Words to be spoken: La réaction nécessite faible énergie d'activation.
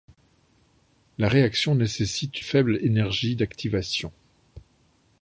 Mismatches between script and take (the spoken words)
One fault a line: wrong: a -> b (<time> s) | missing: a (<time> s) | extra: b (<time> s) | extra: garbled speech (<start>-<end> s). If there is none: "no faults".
no faults